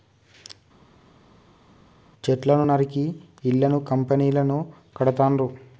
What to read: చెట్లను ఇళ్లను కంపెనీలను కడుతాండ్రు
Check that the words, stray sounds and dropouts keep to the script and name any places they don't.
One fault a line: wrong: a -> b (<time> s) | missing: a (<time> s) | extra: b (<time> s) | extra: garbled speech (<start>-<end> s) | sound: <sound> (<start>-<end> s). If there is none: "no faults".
extra: నరికి (2.6 s)